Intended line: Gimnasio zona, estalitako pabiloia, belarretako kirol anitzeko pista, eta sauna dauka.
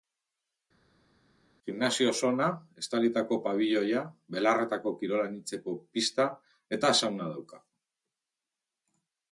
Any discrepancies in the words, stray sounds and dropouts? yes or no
no